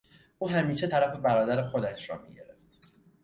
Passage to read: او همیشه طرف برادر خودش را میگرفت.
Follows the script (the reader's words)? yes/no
yes